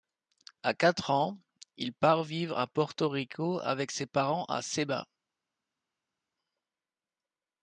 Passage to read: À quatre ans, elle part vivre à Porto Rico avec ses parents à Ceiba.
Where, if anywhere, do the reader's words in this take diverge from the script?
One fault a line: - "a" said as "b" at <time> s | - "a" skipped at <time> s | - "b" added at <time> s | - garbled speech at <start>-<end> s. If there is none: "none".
- "elle" said as "il" at 1.8 s